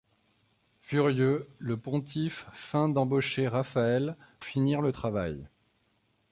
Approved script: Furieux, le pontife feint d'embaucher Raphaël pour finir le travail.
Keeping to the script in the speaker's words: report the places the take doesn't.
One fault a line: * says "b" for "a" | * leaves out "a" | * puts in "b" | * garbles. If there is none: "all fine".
* leaves out "pour"